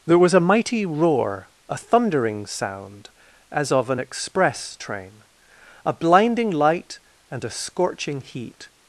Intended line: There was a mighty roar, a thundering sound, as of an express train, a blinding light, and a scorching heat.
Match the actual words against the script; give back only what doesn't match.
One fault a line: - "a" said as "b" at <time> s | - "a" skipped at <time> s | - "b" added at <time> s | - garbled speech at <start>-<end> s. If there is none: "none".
none